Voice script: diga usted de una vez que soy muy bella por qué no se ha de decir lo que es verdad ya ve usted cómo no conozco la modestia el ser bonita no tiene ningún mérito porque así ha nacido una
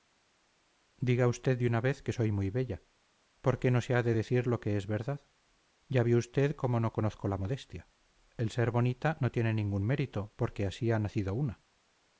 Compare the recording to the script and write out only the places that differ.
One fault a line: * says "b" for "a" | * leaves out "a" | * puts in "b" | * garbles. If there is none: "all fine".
all fine